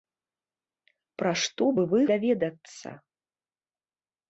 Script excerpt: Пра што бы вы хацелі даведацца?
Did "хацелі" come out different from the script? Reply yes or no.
yes